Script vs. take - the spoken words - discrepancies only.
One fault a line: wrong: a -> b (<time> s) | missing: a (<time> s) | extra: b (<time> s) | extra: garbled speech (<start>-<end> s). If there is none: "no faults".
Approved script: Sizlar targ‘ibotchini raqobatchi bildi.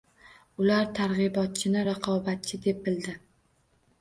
wrong: Sizlar -> Ular (0.6 s)
extra: deb (2.7 s)